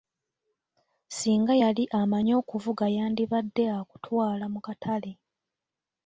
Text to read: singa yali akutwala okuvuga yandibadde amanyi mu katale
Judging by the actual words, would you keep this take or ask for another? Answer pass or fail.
fail